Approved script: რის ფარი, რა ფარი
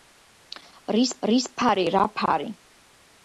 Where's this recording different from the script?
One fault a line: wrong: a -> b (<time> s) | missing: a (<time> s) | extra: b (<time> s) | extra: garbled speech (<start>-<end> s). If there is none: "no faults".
extra: რის (1.3 s)